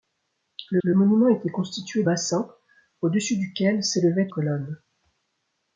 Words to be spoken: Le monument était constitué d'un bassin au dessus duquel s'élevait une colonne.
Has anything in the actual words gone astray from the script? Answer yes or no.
yes